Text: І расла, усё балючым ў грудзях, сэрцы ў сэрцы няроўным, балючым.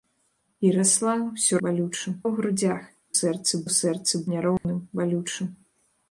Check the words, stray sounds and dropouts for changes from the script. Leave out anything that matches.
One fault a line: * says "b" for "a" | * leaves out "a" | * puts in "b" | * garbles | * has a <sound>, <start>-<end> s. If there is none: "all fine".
* has a dropout, 4.6-4.6 s